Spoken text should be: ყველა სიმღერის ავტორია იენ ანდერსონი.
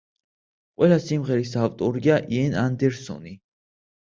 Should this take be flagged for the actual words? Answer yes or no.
no